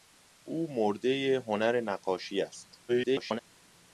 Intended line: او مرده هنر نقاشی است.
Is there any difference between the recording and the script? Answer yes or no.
yes